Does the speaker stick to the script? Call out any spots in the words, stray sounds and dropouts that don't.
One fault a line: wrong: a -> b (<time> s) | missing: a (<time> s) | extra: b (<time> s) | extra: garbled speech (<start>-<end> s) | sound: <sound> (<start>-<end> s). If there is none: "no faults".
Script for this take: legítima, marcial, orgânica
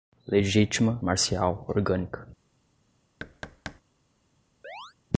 sound: thud (3.2-3.8 s)
sound: chirp (4.6-4.9 s)